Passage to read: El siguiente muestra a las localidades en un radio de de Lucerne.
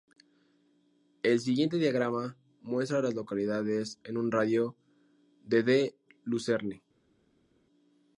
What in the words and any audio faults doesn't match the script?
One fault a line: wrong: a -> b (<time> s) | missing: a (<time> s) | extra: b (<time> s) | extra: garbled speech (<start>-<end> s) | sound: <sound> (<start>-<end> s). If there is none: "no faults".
extra: diagrama (1.8 s)